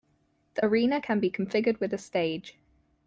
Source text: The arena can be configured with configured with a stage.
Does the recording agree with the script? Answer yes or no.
no